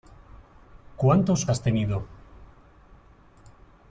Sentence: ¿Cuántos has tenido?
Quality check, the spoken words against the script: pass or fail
pass